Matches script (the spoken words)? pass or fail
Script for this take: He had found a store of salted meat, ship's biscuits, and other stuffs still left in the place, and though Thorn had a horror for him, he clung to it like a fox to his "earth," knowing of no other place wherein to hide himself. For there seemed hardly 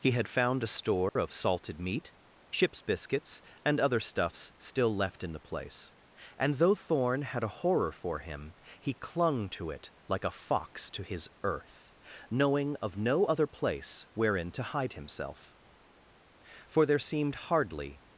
pass